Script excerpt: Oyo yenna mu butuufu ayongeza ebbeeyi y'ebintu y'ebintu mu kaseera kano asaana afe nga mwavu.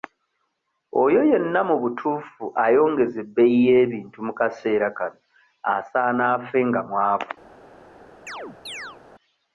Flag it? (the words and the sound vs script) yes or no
yes